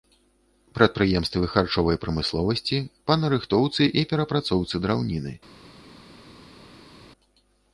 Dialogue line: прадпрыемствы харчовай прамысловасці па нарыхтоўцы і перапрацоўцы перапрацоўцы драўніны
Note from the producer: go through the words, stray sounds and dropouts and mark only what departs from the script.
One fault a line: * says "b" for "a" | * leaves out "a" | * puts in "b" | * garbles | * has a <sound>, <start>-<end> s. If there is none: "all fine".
* leaves out "перапрацоўцы"